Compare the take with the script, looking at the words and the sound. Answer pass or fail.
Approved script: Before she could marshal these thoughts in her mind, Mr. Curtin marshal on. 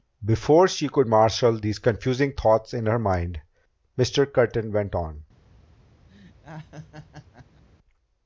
fail